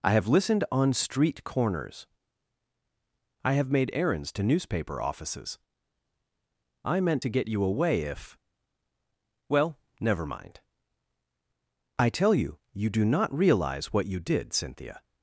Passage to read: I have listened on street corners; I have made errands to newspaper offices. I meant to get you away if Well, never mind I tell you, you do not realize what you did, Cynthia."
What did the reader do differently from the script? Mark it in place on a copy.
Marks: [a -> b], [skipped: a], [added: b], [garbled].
I have listened on street corners; I have made errands to newspaper offices. I meant to get you away if Well, never mind I tell you, you do not realize what you did, Cynthia."